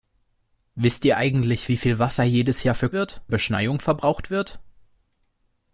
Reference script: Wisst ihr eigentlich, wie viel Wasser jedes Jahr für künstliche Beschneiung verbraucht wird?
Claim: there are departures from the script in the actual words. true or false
true